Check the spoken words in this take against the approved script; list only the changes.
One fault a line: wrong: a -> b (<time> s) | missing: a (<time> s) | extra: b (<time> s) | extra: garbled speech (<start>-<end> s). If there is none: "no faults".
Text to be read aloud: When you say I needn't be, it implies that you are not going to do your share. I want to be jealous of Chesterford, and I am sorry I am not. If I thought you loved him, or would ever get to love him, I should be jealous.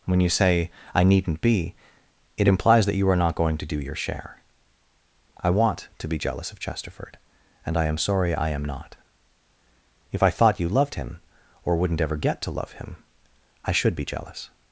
wrong: would -> wouldn't (11.8 s)